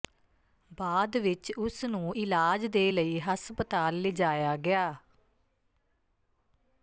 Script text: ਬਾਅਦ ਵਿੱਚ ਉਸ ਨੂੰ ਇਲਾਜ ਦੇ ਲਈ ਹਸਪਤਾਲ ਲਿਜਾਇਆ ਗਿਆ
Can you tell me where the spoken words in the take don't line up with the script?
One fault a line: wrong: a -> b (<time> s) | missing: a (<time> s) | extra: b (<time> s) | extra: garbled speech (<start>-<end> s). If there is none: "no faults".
no faults